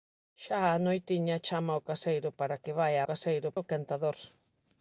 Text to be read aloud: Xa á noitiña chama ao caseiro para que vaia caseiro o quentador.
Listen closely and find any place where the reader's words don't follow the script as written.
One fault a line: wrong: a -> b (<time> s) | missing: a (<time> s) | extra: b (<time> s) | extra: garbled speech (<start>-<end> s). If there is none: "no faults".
no faults